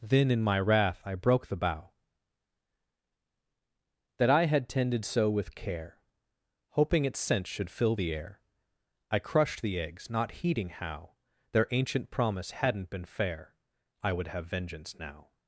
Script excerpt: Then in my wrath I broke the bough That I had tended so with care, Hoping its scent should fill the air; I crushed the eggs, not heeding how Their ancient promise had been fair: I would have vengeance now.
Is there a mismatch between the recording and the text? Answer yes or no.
yes